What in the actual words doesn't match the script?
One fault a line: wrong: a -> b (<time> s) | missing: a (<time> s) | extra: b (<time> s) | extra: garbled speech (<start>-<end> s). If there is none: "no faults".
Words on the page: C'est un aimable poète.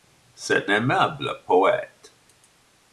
missing: un (0.7 s)